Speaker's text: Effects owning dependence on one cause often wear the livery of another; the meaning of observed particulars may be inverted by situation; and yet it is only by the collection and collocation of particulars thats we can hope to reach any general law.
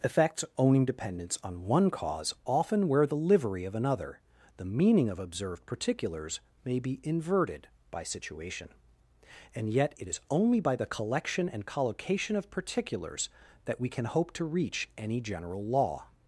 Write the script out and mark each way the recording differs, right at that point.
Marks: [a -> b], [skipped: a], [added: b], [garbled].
Effects owning dependence on one cause often wear the livery of another; the meaning of observed particulars may be inverted by situation; and yet it is only by the collection and collocation of particulars [thats -> that] we can hope to reach any general law.